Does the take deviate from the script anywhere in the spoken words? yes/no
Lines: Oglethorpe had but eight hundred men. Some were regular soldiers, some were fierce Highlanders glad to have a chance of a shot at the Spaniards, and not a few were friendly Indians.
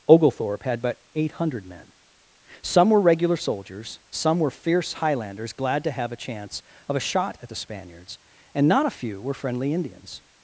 no